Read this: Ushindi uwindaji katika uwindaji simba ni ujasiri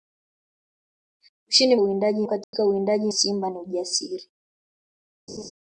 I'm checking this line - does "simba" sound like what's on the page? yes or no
yes